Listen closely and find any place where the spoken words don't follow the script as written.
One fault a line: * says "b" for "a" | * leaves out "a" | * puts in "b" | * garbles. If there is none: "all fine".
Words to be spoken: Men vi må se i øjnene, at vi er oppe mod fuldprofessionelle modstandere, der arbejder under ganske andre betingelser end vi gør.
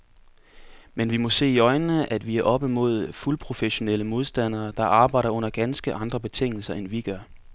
all fine